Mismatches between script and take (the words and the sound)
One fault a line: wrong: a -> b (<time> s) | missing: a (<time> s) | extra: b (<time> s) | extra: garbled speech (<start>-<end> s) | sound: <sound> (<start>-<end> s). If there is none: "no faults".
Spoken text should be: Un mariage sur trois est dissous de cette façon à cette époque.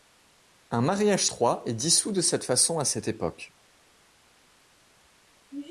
missing: sur (1.2 s)